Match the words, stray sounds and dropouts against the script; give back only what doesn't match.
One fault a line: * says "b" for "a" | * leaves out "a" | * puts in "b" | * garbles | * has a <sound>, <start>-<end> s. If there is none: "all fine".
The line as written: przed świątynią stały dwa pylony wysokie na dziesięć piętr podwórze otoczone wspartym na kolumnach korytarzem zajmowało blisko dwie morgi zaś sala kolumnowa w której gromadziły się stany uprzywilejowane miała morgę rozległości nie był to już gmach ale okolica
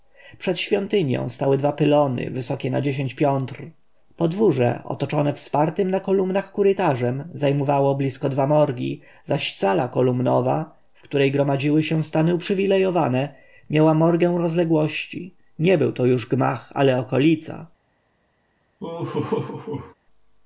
* has a laugh, 18.8-19.9 s